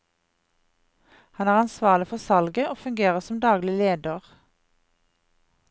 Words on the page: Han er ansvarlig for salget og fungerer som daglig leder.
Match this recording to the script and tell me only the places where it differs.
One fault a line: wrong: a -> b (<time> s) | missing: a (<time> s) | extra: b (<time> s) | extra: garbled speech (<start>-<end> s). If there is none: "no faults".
no faults